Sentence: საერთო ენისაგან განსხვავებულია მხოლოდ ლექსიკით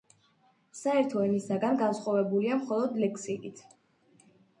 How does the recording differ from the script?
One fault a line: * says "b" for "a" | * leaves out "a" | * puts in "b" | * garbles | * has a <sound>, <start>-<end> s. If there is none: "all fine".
all fine